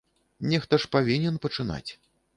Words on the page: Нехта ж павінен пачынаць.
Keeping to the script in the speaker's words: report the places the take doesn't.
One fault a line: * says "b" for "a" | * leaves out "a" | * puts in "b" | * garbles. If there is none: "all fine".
all fine